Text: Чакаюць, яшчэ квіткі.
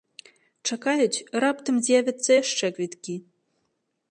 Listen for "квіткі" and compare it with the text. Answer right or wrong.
right